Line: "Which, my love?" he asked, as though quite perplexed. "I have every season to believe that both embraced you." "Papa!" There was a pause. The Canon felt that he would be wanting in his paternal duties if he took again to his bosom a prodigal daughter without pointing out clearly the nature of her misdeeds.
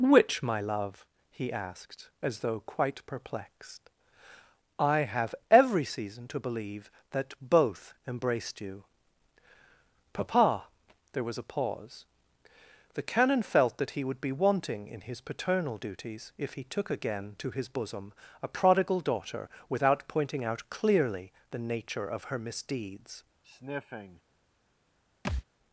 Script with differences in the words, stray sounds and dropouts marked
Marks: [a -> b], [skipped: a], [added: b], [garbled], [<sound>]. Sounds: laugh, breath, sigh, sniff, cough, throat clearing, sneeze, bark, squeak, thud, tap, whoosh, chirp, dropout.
"Which, my love?" he asked, as though quite perplexed. "I have every season to believe that both embraced you." "Papa!" There was a pause. The Canon felt that he would be wanting in his paternal duties if he took again to his bosom a prodigal daughter without pointing out clearly the nature of her misdeeds. [sniff] [thud]